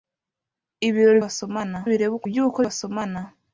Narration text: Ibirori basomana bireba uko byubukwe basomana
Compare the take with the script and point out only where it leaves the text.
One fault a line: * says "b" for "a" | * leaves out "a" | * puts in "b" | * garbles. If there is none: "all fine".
all fine